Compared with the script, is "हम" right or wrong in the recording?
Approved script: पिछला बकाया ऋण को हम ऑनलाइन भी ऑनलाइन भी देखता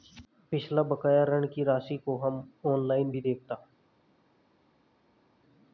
right